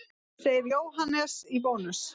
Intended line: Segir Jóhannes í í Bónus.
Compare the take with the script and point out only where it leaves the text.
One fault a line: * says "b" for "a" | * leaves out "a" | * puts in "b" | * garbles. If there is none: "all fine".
* leaves out "í"